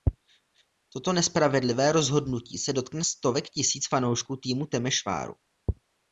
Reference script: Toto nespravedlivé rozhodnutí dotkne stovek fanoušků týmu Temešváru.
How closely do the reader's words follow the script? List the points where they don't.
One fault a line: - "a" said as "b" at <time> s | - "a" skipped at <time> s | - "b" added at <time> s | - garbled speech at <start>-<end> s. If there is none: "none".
- "se" added at 2.6 s
- "tisíc" added at 3.5 s